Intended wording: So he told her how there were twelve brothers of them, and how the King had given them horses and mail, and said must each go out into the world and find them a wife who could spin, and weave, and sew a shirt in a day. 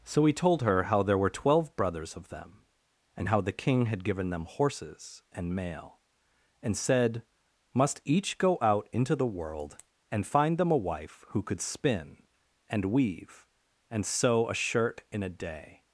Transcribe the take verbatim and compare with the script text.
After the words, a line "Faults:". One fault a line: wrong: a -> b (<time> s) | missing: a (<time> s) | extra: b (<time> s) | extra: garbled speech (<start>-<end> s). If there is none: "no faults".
So he told her how there were twelve brothers of them, and how the King had given them horses and mail, and said must each go out into the world and find them a wife who could spin, and weave, and sew a shirt in a day.
Faults:
no faults